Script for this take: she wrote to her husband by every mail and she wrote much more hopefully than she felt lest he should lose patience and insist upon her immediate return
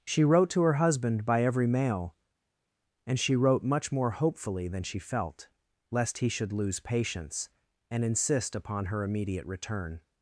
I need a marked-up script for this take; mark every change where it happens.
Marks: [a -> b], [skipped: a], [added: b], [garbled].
she wrote to her husband by every mail and she wrote much more hopefully than she felt lest he should lose patience and insist upon her immediate return